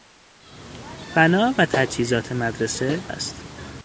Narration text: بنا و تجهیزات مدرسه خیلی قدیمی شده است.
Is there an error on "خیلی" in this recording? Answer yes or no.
yes